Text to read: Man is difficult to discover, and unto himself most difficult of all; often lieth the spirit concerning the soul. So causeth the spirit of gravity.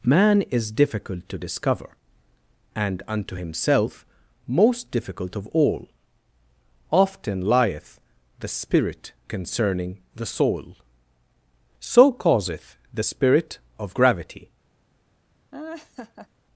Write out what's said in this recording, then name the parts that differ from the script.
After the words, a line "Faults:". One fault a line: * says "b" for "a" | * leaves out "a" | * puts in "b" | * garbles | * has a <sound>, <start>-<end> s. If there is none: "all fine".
Man is difficult to discover, and unto himself most difficult of all; often lieth the spirit concerning the soul. So causeth the spirit of gravity.
Faults:
* has a laugh, 15.5-16.3 s